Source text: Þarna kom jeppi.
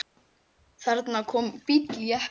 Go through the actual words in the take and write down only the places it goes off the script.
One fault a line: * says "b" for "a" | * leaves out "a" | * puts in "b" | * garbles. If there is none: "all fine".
* puts in "bíll"